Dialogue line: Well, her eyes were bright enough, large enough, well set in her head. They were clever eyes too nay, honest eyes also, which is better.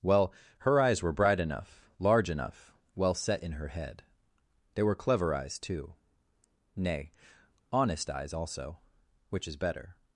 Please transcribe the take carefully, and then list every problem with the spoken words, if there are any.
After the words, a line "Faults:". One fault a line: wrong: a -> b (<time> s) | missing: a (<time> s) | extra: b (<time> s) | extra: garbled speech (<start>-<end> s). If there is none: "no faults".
Well, her eyes were bright enough, large enough, well set in her head. They were clever eyes too nay, honest eyes also, which is better.
Faults:
no faults